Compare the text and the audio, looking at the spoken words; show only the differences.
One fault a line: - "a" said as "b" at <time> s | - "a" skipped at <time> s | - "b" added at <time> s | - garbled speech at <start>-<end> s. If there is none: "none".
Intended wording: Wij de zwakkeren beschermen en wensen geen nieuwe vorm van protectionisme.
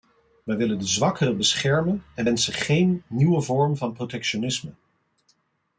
- "willen" added at 0.6 s